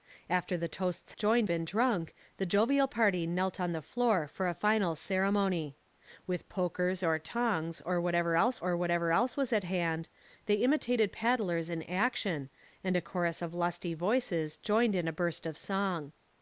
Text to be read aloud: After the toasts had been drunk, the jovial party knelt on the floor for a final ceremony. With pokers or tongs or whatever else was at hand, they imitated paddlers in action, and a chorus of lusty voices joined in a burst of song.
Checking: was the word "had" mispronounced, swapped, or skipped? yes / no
yes